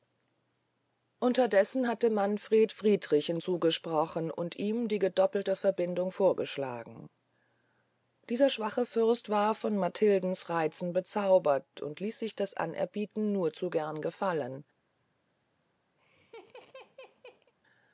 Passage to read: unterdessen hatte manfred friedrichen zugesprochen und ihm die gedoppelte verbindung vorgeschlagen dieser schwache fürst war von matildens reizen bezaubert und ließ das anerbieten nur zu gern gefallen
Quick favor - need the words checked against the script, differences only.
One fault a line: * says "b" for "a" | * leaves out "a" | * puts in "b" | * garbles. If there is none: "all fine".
* puts in "sich"